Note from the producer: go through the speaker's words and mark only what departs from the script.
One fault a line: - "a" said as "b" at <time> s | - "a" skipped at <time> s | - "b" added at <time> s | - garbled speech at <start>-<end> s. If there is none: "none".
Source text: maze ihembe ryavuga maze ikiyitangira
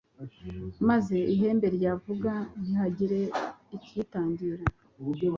- "maze" said as "ntihagire" at 2.6 s